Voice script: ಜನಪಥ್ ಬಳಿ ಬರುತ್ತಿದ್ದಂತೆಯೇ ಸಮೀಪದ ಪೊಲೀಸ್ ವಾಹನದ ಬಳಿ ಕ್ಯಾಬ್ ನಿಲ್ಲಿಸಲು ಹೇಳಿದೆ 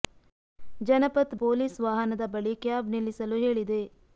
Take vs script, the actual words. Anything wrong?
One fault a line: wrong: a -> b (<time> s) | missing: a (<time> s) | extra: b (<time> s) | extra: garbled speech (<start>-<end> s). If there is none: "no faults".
missing: ಬಳಿ ಬರುತ್ತಿದ್ದಂತೆಯೇ ಸಮೀಪದ (1.3 s)